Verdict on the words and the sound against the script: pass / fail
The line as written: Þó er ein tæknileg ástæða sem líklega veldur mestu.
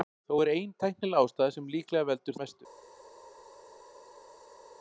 pass